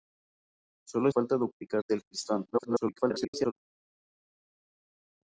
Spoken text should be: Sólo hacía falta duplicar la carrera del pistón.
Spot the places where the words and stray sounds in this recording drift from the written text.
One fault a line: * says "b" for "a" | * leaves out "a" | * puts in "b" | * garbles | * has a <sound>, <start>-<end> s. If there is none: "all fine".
* leaves out "hacía"
* leaves out "la carrera"
* garbles